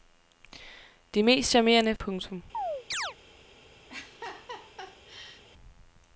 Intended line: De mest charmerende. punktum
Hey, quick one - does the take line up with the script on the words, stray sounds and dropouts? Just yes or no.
no